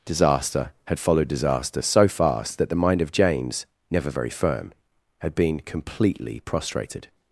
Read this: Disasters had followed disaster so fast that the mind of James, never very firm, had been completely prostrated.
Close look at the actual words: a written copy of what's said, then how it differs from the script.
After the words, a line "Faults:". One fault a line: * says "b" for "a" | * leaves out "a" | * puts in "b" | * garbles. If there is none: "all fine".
Disaster had followed disaster so fast that the mind of James, never very firm, had been completely prostrated.
Faults:
* says "Disaster" for "Disasters"